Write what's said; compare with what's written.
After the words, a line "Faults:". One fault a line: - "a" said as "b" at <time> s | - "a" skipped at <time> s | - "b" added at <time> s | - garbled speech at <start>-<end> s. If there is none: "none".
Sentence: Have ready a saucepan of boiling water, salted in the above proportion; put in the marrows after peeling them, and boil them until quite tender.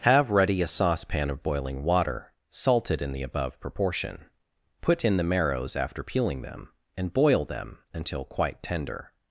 Have ready a saucepan of boiling water, salted in the above proportion; put in the marrows after peeling them, and boil them until quite tender.
Faults:
none